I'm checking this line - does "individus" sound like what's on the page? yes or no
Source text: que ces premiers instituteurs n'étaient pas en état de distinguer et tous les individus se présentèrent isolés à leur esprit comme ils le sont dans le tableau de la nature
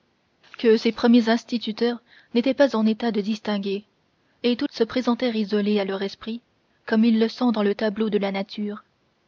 no